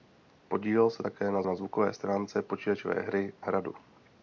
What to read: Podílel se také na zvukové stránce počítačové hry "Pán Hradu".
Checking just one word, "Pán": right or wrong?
wrong